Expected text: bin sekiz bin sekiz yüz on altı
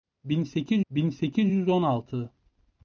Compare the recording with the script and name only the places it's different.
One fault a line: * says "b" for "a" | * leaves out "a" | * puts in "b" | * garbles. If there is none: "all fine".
all fine